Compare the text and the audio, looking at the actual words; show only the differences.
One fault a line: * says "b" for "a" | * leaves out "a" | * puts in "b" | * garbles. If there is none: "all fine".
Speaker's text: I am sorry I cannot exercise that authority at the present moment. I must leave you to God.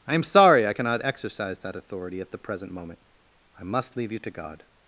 all fine